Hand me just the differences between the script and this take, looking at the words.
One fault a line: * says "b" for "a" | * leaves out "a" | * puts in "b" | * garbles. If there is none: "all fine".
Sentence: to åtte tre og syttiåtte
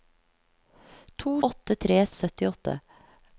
all fine